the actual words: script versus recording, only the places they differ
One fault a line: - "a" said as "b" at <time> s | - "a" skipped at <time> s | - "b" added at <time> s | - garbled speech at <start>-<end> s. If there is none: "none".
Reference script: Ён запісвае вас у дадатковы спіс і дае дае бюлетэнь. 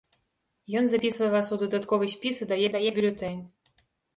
none